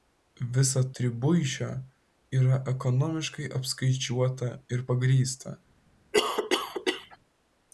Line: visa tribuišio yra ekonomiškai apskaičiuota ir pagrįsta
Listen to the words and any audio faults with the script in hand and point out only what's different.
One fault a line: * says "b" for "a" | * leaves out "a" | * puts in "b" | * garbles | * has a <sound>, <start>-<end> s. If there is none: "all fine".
* has a cough, 6.1-7.2 s